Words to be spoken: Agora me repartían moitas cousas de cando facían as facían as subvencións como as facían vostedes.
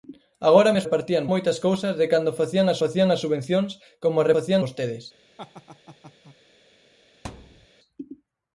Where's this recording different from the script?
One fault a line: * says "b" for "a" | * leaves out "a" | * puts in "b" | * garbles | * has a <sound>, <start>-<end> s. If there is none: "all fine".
* has a laugh, 5.4-6.4 s
* has a thud, 7.2-7.7 s